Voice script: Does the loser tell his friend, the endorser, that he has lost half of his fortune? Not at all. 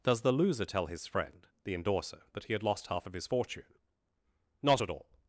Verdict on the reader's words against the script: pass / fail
fail